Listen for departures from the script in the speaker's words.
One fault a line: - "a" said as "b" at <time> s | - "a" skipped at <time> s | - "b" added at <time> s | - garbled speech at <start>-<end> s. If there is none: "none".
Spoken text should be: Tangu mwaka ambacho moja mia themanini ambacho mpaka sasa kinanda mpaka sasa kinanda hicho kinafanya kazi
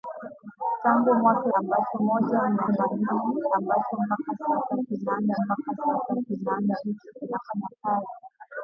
none